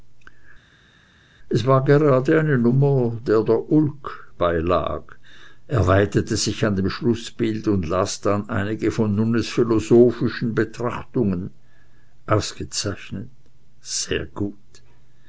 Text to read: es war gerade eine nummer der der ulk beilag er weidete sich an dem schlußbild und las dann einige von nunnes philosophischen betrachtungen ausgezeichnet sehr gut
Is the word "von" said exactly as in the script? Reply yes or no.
yes